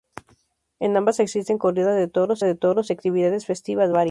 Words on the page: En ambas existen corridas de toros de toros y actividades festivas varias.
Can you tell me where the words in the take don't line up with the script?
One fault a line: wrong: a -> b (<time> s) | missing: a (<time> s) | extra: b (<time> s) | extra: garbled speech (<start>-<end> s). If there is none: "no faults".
no faults